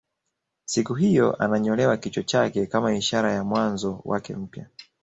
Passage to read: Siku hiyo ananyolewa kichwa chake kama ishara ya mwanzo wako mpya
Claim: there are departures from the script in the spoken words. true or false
true